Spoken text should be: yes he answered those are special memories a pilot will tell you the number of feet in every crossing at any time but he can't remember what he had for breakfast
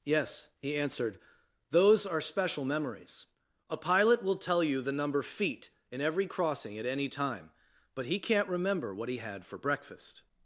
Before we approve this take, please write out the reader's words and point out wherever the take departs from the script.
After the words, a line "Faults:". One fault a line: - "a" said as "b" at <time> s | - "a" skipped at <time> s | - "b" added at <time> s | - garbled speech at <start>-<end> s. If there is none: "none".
yes he answered those are special memories a pilot will tell you the number feet in every crossing at any time but he can't remember what he had for breakfast
Faults:
- "of" skipped at 5.2 s